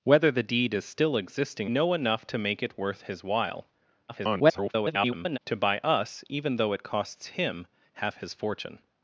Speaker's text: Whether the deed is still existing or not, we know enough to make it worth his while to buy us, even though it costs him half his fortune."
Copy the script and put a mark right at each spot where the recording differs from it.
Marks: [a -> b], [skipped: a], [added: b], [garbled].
Whether the deed is still existing [skipped: or not, we] know enough to make it worth his while [garbled] to buy us, even though it costs him half his fortune."